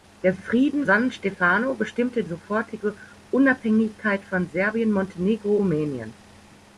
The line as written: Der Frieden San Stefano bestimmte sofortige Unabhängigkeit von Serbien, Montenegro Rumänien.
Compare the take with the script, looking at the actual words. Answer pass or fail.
pass